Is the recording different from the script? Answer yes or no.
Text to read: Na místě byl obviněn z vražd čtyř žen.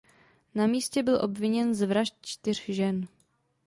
no